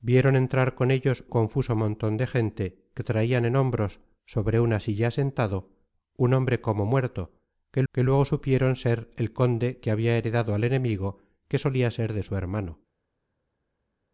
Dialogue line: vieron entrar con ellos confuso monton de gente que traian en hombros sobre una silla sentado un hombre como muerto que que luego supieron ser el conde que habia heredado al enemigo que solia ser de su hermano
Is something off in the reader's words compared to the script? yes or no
no